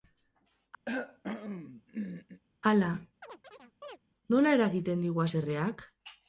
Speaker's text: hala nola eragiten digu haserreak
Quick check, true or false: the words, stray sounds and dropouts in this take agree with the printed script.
false